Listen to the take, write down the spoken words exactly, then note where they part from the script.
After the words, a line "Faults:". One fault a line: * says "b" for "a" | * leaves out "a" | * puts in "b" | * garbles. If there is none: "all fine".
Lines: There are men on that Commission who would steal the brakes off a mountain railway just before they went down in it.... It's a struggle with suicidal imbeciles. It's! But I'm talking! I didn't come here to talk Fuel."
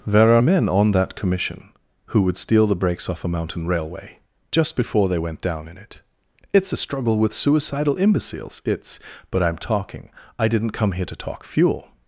There are men on that Commission who would steal the brakes off a mountain railway just before they went down in it.... It's a struggle with suicidal imbeciles. It's! But I'm talking! I didn't come here to talk Fuel."
Faults:
all fine